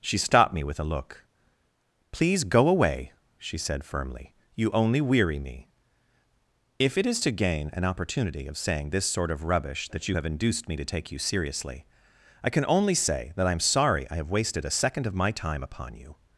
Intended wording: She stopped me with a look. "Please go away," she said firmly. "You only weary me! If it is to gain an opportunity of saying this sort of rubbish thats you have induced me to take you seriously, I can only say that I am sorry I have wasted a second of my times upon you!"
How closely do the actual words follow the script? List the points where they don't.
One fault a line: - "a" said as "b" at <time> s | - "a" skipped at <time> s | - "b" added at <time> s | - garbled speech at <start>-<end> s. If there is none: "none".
- "thats" said as "that" at 9.9 s
- "times" said as "time" at 15.3 s